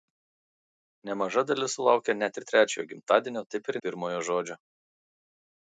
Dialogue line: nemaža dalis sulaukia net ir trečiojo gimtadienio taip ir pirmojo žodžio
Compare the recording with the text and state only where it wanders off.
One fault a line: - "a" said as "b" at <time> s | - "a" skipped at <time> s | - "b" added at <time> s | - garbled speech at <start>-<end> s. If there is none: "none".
none